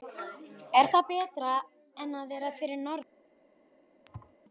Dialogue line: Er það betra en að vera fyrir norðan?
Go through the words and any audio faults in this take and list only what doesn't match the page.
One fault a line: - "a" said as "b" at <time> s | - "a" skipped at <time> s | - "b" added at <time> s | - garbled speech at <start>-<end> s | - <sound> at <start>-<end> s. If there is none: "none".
- thud at 4.1-4.3 s